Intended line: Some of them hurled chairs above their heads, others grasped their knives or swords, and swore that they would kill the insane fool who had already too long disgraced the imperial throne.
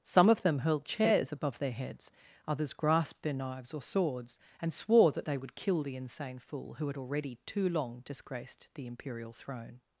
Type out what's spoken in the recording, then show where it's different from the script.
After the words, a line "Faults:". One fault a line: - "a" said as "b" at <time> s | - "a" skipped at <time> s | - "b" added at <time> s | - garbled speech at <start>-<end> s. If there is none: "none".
Some of them hurled chairs above their heads, others grasped their knives or swords, and swore that they would kill the insane fool who had already too long disgraced the imperial throne.
Faults:
none